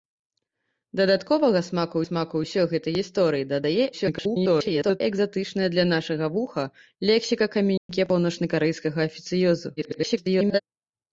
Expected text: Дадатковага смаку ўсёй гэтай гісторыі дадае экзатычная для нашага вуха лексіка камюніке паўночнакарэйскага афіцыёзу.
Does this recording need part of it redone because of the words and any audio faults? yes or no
yes